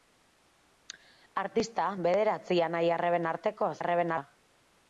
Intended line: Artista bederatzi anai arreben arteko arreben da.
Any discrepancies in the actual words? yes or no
no